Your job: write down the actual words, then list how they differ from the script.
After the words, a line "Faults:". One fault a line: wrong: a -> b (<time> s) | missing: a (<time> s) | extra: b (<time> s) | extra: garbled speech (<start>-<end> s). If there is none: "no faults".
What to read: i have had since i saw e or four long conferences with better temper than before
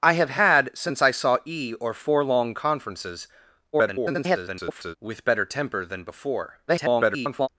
i have had since i saw e or four long conferences [garbled] with better temper than before [garbled]
Faults:
extra: garbled speech (3.7-5.0 s)
extra: garbled speech (6.7-7.5 s)